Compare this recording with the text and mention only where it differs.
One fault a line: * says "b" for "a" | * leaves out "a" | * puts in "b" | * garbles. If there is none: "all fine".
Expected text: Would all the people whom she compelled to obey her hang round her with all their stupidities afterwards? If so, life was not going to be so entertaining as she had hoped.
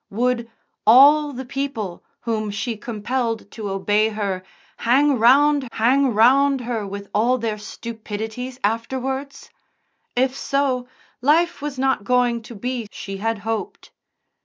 * puts in "hang round"
* leaves out "so entertaining as"